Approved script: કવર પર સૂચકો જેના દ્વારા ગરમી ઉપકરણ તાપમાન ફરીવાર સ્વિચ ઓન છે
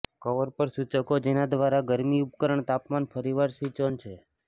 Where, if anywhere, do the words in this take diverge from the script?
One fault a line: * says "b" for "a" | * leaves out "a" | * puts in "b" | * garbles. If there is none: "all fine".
all fine